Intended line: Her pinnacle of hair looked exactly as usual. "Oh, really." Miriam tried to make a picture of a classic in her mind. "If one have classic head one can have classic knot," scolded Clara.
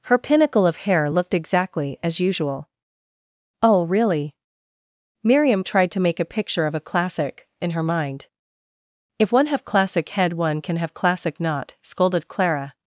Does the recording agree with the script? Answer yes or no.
yes